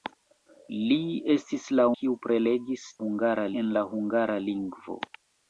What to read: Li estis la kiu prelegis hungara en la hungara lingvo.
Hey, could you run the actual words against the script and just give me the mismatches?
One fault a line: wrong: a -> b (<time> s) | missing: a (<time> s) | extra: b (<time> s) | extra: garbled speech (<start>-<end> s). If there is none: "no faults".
no faults